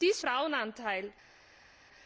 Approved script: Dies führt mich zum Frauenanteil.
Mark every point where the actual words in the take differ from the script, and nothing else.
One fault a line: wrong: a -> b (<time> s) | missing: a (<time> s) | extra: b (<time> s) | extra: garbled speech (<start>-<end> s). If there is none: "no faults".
missing: führt mich zum (0.2 s)